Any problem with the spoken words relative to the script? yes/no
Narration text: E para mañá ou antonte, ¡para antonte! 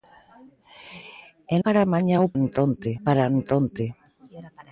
no